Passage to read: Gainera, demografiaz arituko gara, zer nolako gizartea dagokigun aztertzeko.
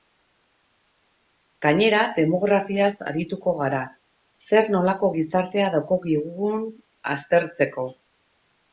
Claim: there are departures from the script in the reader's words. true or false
false